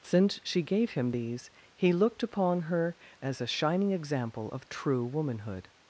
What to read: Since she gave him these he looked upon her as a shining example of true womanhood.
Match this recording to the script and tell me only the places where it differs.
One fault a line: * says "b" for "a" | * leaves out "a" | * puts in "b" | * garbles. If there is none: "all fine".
all fine